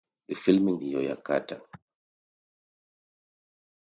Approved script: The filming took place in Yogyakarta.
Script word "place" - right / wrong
wrong